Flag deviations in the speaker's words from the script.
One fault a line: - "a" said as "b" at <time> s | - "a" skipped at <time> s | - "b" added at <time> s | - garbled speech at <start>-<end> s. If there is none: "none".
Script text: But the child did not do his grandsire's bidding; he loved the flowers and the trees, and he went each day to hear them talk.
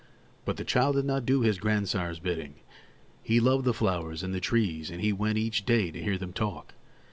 none